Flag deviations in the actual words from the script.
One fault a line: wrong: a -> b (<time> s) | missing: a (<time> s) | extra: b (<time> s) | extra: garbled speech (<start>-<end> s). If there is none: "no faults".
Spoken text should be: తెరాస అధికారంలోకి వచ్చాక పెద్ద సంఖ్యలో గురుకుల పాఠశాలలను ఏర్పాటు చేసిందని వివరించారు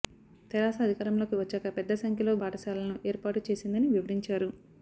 missing: గురుకుల (2.3 s)